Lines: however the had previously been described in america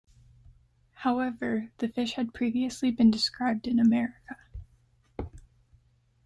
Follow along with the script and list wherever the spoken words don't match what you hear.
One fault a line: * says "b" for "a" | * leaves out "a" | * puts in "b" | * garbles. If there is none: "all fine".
* puts in "fish"